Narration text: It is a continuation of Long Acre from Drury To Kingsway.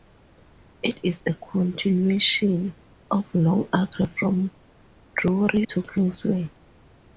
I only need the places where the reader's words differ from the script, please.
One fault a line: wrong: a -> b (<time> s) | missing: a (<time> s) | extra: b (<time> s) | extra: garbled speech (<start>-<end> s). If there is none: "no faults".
no faults